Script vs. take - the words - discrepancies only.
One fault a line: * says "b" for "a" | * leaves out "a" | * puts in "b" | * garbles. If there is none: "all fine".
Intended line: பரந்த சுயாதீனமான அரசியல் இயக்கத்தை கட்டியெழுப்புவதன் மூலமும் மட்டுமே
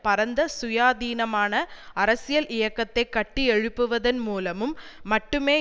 all fine